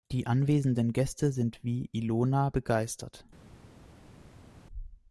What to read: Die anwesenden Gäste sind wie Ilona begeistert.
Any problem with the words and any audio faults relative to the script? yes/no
no